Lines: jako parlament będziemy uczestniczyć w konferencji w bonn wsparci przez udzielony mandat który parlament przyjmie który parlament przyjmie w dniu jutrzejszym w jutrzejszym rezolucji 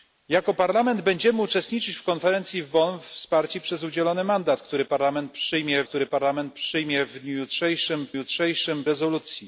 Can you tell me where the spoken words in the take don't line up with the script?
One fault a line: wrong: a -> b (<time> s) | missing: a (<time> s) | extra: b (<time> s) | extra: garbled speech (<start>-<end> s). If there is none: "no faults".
no faults